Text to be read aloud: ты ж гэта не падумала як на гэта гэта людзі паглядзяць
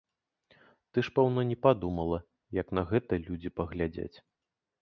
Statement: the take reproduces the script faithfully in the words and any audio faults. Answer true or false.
false